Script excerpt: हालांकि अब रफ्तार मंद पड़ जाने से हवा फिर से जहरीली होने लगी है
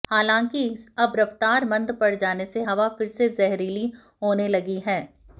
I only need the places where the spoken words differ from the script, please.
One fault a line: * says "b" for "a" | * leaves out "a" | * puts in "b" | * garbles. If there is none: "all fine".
all fine